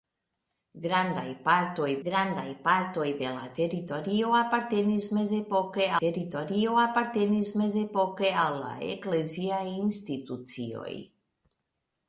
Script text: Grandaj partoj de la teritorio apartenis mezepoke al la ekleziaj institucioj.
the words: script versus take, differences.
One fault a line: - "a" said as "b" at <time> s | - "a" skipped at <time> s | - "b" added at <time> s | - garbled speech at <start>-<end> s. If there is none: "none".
- "grandaj partoj" added at 2.1 s
- "teritorio apartenis mezepoke" added at 6.0 s